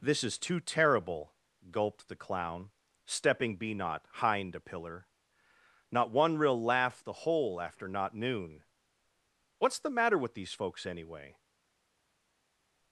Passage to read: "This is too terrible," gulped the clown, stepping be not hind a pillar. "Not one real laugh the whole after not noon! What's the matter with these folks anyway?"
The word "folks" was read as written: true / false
true